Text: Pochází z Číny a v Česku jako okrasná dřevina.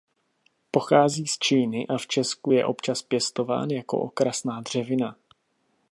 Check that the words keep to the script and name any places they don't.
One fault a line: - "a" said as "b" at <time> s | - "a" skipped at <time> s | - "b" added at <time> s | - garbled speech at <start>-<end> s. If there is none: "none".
- "je občas pěstován" added at 2.5 s